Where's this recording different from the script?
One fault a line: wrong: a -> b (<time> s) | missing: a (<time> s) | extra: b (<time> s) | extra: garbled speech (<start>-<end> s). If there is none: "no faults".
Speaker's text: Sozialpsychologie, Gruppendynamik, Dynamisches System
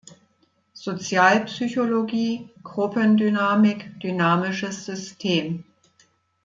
no faults